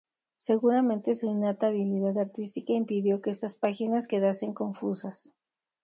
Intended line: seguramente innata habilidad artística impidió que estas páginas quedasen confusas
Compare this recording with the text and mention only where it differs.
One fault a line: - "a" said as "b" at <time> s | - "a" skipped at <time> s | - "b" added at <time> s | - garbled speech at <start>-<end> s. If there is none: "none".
- "su" added at 1.1 s